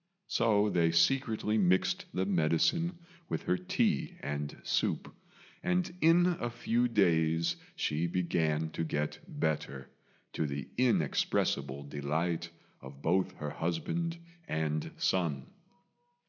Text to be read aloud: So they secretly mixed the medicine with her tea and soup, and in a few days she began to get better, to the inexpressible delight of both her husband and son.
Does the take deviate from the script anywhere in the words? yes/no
no